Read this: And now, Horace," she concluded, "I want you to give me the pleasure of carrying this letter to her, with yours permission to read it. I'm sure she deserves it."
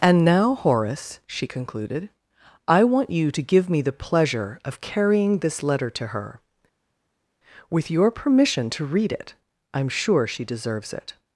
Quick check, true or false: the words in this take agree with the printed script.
false